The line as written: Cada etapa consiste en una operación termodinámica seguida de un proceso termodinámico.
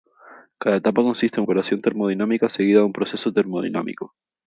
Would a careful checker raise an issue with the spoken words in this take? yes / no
yes